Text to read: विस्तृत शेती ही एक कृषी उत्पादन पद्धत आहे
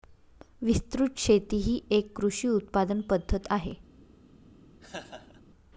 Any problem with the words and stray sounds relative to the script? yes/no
yes